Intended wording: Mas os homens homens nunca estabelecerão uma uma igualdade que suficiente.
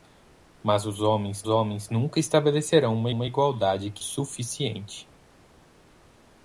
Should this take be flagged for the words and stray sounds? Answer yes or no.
no